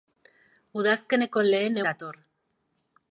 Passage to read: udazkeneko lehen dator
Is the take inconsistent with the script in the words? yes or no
no